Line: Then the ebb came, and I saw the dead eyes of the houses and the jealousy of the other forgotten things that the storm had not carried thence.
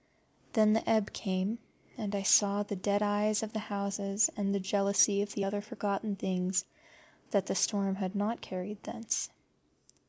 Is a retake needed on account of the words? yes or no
no